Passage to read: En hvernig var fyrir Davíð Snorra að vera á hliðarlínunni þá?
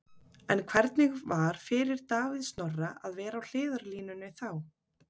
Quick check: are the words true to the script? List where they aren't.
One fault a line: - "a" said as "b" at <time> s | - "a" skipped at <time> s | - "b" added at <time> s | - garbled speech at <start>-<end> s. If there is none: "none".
none